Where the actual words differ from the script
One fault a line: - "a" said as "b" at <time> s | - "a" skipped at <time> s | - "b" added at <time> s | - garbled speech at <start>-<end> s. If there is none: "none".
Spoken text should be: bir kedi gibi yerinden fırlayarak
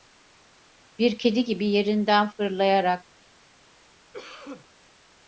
none